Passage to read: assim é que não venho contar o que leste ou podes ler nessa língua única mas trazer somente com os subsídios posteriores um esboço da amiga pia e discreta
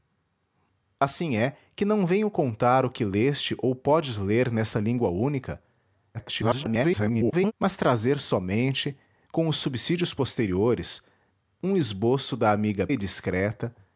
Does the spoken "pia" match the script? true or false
false